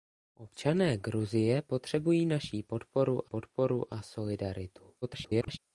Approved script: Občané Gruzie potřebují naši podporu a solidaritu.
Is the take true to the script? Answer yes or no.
no